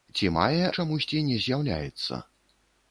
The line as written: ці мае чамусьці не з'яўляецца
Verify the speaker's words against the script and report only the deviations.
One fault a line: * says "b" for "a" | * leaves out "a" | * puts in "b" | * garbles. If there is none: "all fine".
all fine